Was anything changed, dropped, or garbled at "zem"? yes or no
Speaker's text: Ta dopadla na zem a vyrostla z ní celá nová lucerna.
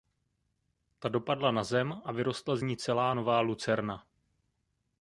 no